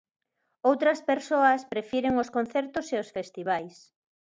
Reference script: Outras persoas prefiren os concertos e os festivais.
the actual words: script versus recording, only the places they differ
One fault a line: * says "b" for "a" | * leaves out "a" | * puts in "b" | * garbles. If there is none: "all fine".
all fine